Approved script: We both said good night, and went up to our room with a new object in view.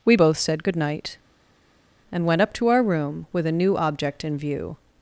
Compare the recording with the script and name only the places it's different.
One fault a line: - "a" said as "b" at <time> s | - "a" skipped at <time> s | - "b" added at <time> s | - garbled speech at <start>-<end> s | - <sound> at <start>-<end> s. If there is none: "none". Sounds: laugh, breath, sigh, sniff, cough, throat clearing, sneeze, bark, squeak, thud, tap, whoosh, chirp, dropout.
none